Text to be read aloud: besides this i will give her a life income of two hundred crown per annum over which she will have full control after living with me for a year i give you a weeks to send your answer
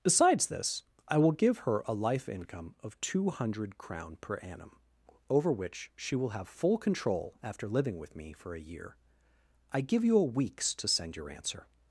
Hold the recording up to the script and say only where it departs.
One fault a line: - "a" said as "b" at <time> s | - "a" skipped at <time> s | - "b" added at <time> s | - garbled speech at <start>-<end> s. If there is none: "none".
none